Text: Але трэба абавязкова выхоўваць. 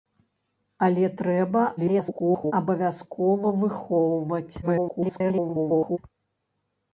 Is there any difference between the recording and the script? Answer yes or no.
yes